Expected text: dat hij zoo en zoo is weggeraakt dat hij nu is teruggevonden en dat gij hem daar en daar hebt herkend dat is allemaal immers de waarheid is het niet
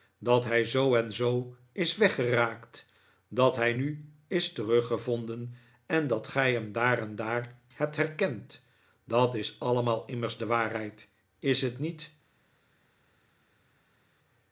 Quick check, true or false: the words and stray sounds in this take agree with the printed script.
true